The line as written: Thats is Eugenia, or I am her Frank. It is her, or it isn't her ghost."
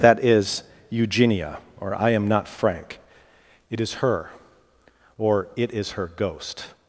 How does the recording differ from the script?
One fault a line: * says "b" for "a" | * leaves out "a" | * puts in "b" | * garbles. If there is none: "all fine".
* says "That" for "Thats"
* says "not" for "her"
* says "is" for "isn't"